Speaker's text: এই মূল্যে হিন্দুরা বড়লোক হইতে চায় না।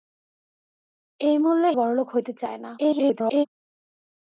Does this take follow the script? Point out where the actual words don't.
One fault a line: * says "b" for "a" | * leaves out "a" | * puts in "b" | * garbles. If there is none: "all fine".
* leaves out "হিন্দুরা"
* garbles